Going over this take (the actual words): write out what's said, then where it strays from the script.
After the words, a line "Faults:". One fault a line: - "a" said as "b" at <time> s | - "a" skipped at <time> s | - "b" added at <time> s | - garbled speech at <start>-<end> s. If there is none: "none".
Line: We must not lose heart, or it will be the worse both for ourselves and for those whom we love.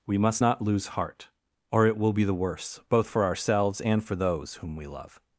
We must not lose heart, or it will be the worse both for ourselves and for those whom we love.
Faults:
none